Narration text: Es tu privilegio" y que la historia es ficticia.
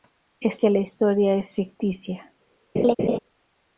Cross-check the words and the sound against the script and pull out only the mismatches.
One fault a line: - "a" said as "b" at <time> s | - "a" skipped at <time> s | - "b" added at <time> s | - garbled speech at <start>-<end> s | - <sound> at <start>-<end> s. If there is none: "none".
- "tu privilegio y" skipped at 0.6 s
- laugh at 2.7-3.2 s